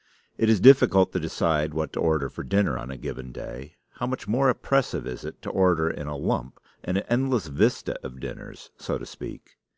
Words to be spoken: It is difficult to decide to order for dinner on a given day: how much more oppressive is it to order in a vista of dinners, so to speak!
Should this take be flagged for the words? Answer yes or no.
yes